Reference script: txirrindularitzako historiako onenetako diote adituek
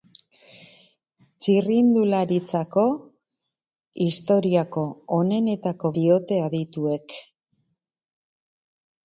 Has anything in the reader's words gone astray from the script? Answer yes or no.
no